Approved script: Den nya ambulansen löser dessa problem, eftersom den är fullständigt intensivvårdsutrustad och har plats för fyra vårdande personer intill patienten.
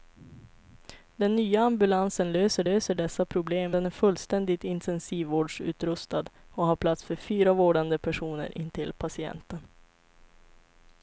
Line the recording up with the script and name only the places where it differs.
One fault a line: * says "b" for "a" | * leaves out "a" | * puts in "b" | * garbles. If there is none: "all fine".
* puts in "löser"
* leaves out "eftersom"